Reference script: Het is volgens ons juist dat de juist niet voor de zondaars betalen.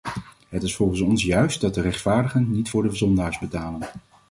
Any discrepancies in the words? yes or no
yes